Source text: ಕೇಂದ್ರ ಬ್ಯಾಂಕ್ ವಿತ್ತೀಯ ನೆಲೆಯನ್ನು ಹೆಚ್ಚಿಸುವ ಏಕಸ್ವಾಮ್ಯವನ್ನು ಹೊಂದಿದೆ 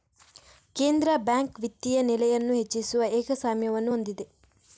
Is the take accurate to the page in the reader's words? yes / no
yes